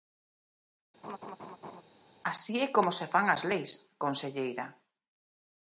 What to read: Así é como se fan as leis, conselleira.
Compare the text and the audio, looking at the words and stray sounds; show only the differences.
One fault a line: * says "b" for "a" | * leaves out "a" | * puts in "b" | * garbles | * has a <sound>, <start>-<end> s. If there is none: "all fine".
* has a laugh, 1.0-1.8 s